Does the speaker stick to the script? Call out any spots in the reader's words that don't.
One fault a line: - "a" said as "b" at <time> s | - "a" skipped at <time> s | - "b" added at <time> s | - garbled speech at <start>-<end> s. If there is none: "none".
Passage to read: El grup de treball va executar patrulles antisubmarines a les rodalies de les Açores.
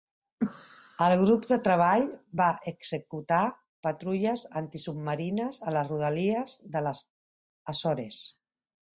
none